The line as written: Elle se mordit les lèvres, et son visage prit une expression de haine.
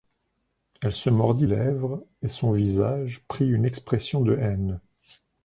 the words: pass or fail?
fail